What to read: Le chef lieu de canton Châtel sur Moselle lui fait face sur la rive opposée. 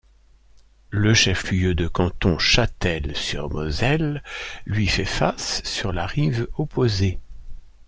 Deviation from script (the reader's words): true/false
false